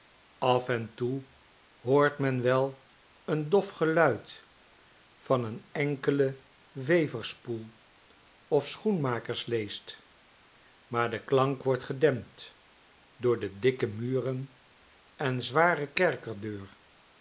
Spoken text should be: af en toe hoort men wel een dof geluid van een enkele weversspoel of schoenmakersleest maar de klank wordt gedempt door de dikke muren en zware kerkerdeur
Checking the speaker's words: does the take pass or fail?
pass